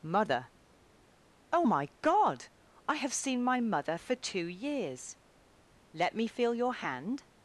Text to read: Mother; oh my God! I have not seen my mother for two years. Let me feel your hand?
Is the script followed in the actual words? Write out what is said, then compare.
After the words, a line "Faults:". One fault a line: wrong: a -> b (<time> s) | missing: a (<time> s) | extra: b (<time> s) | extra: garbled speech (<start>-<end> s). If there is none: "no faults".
Mother; oh my God! I have seen my mother for two years. Let me feel your hand?
Faults:
missing: not (3.1 s)